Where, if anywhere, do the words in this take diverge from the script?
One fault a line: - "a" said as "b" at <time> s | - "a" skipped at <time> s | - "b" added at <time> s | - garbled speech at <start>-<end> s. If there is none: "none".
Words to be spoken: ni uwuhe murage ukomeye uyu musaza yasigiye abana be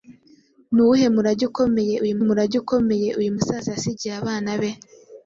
- "murage ukomeye uyu" added at 2.3 s